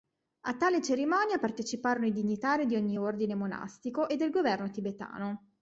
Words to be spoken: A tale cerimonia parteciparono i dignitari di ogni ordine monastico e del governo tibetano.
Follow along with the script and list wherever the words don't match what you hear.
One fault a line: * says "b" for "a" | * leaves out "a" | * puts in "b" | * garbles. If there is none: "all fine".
all fine